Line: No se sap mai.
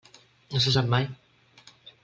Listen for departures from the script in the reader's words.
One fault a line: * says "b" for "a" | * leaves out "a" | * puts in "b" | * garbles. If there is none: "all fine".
all fine